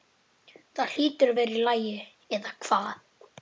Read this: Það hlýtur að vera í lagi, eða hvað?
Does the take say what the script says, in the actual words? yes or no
yes